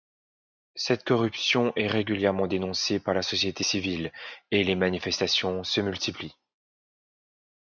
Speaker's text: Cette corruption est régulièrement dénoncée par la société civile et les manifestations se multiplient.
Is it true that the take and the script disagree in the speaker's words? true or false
false